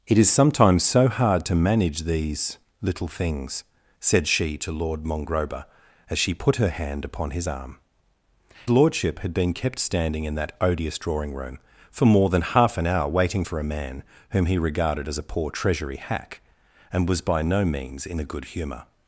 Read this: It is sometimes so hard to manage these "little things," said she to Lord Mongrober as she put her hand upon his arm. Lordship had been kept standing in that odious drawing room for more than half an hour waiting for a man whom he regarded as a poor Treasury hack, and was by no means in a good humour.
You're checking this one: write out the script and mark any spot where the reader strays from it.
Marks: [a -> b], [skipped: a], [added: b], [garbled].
It is sometimes so hard to manage these "little things," said she to Lord Mongrober as she put her hand upon his arm. Lordship had been kept standing in that odious drawing room for more than half an hour waiting for a man whom he regarded as a poor Treasury hack, and was by no means in a good humour.